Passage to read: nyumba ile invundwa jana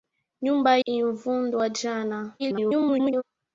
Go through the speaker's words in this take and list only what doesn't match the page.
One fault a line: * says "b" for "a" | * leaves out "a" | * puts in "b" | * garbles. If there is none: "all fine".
* leaves out "ile"
* garbles